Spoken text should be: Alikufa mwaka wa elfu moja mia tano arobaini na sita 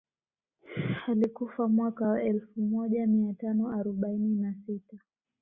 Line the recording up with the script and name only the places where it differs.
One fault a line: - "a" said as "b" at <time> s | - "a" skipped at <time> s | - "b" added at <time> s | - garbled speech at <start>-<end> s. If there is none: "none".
none